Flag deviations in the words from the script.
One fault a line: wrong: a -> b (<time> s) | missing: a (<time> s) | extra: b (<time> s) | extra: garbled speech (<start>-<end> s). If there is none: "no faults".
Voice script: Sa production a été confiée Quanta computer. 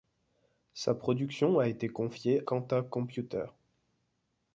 no faults